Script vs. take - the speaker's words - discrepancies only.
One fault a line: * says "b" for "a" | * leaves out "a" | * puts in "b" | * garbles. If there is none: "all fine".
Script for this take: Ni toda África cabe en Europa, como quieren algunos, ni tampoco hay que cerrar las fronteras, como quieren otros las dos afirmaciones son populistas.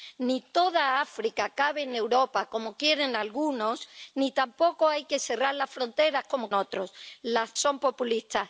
* leaves out "quieren"
* leaves out "dos afirmaciones"